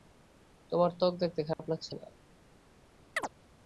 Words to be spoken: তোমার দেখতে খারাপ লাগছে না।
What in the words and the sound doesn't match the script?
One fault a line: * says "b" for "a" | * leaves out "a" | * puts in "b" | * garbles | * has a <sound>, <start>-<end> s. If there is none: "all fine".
* puts in "ত্বক"
* has a dropout, 1.5-1.6 s
* has a chirp, 3.2-3.3 s